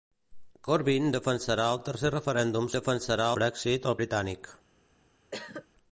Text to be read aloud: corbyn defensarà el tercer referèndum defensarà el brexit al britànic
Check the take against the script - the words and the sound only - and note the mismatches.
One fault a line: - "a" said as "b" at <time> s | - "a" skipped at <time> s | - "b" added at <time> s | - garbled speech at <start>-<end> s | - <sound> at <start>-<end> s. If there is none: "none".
- cough at 5.3-5.7 s